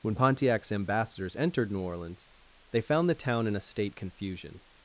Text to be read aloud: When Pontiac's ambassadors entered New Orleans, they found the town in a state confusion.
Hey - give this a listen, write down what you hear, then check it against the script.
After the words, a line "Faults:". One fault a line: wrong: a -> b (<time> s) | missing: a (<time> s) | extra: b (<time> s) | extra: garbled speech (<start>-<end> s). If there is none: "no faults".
When Pontiac's ambassadors entered New Orleans, they found the town in a state confusion.
Faults:
no faults